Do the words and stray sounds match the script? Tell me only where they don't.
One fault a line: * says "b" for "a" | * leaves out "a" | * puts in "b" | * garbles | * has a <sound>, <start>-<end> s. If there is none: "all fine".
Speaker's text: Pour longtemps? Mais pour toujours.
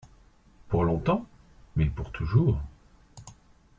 all fine